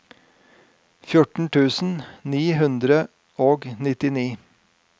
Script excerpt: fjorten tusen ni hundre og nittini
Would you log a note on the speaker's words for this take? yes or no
no